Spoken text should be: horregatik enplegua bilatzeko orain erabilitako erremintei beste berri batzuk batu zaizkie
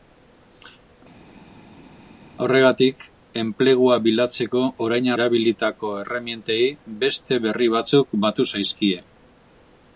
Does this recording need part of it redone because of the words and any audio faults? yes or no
no